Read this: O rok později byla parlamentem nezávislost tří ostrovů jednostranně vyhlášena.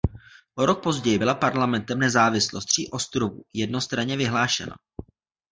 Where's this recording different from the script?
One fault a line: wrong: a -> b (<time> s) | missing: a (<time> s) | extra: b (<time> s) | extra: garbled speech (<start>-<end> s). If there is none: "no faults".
no faults